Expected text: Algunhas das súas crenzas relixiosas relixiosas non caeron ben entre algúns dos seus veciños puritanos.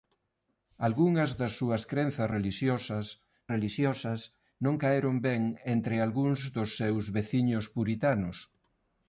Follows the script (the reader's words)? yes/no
yes